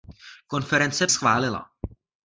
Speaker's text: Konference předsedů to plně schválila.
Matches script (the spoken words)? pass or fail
fail